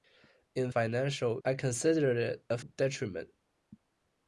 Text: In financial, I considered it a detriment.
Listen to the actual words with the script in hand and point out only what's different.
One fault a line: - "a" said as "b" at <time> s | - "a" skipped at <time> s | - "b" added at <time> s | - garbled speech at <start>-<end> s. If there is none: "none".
none